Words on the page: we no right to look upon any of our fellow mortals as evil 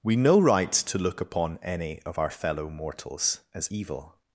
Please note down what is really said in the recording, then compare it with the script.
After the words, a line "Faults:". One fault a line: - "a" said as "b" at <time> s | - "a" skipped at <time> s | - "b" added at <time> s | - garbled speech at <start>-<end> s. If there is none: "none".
we no right to look upon any of our fellow mortals as evil
Faults:
none